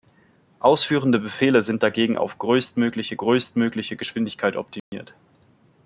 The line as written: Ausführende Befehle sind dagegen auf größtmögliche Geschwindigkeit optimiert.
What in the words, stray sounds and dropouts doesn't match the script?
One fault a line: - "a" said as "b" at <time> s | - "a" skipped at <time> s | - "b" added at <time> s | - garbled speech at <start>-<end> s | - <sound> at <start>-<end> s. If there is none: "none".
- "größtmögliche" added at 3.2 s
- dropout at 4.8-4.9 s